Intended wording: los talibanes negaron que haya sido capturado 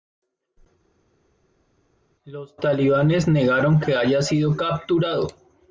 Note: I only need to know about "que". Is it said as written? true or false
true